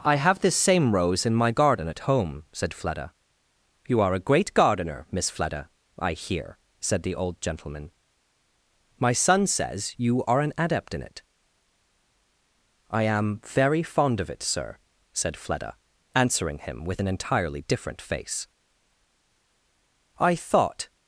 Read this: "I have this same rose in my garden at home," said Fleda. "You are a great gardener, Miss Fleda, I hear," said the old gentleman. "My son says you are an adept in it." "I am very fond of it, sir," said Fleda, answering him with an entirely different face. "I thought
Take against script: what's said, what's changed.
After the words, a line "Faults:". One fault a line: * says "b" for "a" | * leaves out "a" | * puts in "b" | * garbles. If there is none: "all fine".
"I have this same rose in my garden at home," said Fleda. "You are a great gardener, Miss Fleda, I hear," said the old gentleman. "My son says you are an adept in it." "I am very fond of it, sir," said Fleda, answering him with an entirely different face. "I thought
Faults:
all fine